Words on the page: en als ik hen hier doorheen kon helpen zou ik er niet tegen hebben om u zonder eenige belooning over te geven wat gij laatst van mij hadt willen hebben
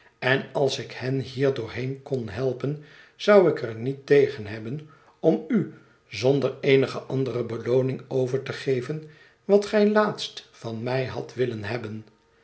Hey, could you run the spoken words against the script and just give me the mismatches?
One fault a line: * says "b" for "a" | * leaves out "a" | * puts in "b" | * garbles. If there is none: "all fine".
* puts in "andere"